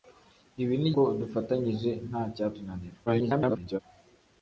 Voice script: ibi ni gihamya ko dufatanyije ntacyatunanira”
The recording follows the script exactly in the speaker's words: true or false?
false